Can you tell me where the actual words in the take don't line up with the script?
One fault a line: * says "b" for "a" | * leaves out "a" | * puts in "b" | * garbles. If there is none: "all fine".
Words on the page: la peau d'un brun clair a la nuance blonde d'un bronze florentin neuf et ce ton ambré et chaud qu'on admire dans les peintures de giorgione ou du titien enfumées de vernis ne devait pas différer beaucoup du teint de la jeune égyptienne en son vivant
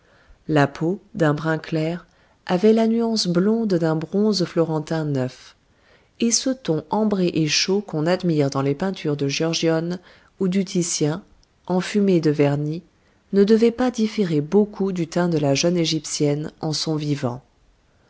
* says "avait" for "a"